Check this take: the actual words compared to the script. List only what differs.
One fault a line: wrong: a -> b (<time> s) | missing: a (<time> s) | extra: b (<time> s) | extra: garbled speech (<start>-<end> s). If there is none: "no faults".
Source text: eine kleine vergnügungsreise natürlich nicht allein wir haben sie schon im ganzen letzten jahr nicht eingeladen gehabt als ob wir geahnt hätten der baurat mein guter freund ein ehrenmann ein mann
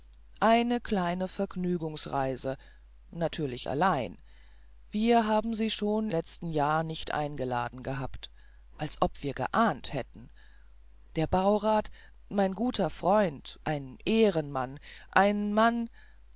missing: nicht (3.7 s)
missing: im ganzen (6.1 s)